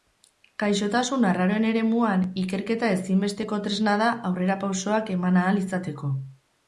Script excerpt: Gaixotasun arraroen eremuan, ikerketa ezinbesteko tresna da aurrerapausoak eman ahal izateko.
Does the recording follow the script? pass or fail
pass